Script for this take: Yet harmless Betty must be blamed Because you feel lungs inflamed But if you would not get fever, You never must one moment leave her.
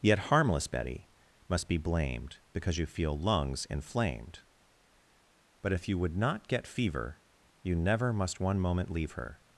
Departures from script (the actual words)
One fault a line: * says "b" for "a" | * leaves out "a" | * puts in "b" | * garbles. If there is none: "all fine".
all fine